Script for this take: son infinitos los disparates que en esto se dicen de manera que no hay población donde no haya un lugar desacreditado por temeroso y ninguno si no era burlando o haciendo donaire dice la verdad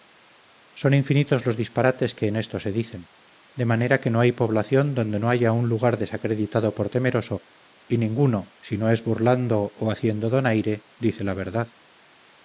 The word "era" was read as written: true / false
false